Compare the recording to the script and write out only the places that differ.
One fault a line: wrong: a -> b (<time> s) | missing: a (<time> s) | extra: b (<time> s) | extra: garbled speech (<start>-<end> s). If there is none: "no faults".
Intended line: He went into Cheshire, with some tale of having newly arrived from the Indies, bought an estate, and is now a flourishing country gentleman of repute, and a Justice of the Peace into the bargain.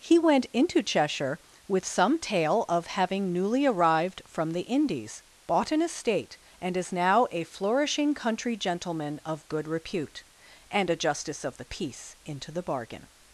extra: good (9.5 s)